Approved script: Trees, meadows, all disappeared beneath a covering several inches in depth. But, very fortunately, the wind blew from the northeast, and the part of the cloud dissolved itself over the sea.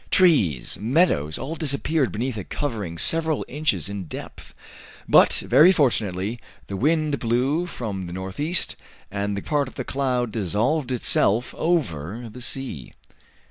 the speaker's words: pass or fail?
pass